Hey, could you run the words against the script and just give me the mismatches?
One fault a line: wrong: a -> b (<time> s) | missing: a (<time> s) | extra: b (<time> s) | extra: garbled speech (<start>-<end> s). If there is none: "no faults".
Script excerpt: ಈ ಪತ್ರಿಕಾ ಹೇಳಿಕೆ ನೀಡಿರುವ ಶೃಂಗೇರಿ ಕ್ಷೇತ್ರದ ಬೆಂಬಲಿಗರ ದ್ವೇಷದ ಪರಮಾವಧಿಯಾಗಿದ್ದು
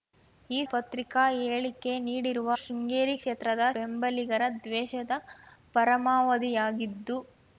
no faults